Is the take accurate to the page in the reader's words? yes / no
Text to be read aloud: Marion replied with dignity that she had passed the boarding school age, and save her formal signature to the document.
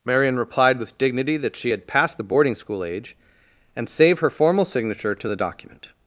yes